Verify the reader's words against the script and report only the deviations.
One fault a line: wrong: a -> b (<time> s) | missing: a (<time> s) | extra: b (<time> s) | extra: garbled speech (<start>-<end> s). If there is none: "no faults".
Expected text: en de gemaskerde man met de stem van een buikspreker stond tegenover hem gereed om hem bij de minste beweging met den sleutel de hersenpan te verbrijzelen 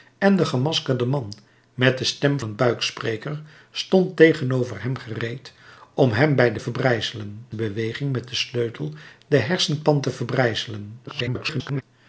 missing: van (2.4 s)
wrong: minste -> verbrijzelen (6.6 s)
extra: garbled speech (11.1-11.8 s)